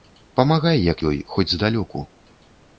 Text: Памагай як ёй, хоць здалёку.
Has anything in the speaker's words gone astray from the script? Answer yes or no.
no